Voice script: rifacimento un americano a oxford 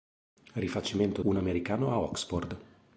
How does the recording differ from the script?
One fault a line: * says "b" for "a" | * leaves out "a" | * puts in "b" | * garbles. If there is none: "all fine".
all fine